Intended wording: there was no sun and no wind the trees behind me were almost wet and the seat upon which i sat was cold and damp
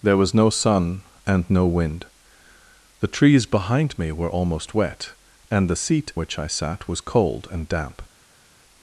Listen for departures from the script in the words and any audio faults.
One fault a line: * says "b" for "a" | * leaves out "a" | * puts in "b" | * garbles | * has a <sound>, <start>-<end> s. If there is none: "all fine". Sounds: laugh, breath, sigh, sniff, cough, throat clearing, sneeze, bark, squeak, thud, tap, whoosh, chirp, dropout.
* leaves out "upon"